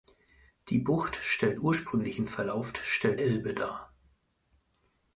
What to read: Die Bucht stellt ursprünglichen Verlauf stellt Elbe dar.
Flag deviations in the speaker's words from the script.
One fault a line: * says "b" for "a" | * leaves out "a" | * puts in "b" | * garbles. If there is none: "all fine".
all fine